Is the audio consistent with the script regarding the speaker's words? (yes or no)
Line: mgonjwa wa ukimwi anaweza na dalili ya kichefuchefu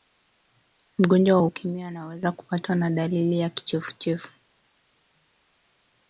no